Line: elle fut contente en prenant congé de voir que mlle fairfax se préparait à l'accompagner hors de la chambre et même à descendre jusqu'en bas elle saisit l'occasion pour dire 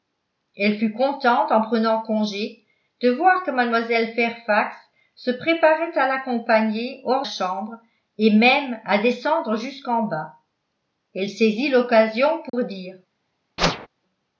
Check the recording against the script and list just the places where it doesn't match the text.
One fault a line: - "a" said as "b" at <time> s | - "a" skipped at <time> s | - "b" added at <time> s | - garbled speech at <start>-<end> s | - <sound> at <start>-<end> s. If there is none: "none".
- "de la" skipped at 7.3 s
- dropout at 12.5-12.5 s
- whoosh at 13.6-13.9 s